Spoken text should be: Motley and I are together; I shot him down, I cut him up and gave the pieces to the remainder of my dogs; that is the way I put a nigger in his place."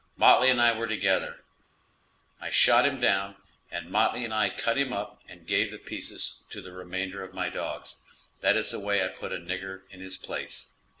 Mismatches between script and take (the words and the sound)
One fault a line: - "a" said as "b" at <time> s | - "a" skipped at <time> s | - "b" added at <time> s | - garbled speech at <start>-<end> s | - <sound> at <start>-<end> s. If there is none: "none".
- "are" said as "were" at 0.8 s
- "and Motley and" added at 3.7 s